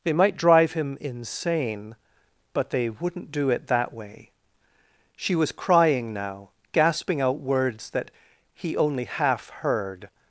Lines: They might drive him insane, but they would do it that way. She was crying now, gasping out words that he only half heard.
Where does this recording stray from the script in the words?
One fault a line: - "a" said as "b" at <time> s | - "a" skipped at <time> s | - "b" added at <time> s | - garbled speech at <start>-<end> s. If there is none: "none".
- "would" said as "wouldn't" at 2.9 s